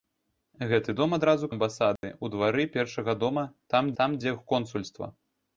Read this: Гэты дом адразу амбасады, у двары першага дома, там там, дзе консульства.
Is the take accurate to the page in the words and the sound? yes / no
no